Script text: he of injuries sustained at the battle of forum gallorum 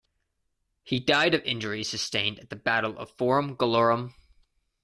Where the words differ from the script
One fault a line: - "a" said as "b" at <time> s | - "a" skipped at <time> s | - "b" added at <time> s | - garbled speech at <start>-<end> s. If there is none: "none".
- "died" added at 1.0 s